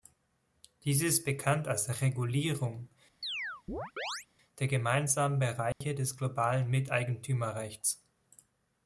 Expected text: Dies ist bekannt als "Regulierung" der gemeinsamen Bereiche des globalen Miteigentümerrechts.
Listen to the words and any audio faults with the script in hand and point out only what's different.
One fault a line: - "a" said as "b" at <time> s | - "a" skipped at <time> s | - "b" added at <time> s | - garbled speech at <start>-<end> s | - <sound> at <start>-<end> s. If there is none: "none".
- chirp at 3.2-4.3 s
- dropout at 5.7-5.8 s